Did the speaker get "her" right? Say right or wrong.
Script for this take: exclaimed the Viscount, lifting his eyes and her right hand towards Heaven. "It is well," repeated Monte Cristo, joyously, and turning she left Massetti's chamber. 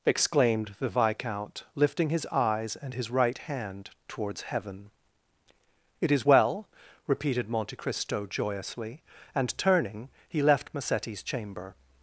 wrong